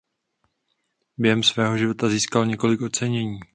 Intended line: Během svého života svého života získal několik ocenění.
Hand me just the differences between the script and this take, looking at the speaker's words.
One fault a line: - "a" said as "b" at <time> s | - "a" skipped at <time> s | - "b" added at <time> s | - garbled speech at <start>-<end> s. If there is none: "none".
- "svého života" skipped at 2.1 s